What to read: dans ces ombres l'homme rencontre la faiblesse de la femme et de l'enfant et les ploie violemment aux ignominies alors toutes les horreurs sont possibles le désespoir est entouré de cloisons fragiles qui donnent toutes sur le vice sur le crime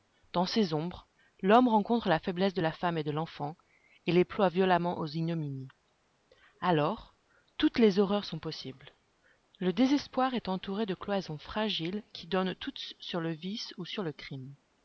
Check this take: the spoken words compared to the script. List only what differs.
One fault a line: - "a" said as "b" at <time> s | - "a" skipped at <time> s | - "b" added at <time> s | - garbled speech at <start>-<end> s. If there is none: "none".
- "ou" added at 13.8 s